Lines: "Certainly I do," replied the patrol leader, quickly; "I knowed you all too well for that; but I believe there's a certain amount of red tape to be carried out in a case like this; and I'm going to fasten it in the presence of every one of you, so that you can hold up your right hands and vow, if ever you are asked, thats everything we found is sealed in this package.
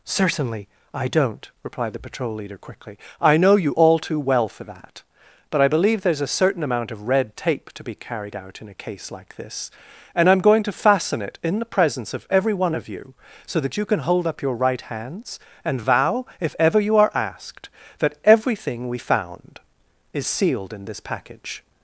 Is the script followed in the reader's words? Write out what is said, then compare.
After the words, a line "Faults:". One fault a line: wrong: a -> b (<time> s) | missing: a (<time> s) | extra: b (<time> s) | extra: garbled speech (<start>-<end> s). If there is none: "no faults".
"Certainly I don't," replied the patrol leader, quickly; "I know you all too well for that; but I believe there's a certain amount of red tape to be carried out in a case like this; and I'm going to fasten it in the presence of every one of you, so that you can hold up your right hands and vow, if ever you are asked, that everything we found is sealed in this package.
Faults:
wrong: do -> don't (1.1 s)
wrong: knowed -> know (3.4 s)
wrong: thats -> that (18.0 s)